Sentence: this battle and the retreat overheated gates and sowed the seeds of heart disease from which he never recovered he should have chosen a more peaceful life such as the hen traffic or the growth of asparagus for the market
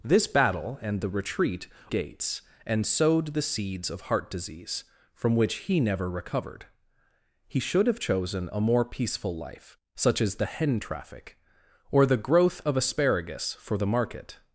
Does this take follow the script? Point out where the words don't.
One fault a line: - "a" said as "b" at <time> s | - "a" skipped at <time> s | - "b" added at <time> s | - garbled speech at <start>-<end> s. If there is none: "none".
- "overheated" skipped at 1.7 s